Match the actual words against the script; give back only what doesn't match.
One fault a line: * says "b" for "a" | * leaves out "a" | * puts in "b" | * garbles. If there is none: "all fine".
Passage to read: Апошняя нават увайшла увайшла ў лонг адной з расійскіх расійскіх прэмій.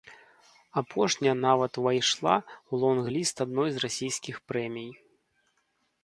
* leaves out "увайшла"
* puts in "ліст"
* leaves out "расійскіх"